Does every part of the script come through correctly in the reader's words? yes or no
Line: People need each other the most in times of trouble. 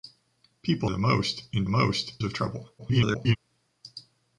no